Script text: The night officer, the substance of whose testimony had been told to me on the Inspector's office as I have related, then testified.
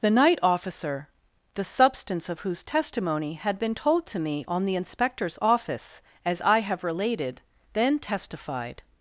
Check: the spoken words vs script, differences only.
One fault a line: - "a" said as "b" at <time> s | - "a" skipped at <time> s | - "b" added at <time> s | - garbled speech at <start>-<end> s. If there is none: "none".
none